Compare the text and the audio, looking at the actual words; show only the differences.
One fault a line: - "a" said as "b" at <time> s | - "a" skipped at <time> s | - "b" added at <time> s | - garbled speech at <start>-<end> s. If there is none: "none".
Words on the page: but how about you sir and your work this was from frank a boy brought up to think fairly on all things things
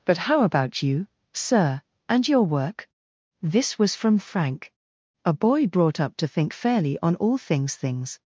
none